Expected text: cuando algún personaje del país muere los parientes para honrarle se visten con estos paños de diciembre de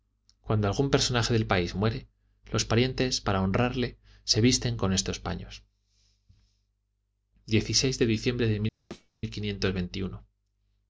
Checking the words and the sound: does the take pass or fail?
fail